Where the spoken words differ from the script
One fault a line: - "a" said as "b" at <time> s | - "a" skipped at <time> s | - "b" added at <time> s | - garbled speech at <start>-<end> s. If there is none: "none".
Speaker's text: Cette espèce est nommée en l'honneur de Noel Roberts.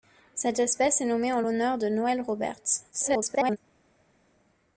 - garbled speech at 2.9-3.6 s